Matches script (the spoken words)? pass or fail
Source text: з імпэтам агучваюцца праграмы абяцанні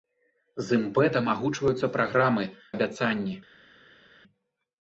pass